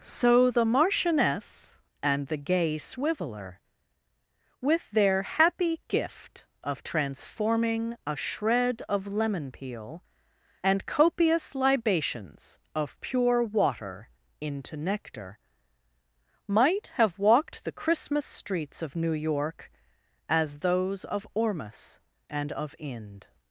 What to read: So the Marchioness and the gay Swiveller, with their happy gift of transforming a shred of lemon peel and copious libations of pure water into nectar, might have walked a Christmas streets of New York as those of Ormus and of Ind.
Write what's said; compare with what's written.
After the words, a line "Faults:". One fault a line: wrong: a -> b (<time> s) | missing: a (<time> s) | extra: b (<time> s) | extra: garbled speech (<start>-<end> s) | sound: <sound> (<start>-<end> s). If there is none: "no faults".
So the Marchioness and the gay Swiveller, with their happy gift of transforming a shred of lemon peel and copious libations of pure water into nectar, might have walked the Christmas streets of New York as those of Ormus and of Ind.
Faults:
wrong: a -> the (17.6 s)